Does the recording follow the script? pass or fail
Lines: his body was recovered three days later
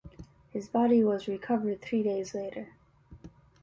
pass